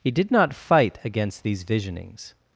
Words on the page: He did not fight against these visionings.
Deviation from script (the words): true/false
false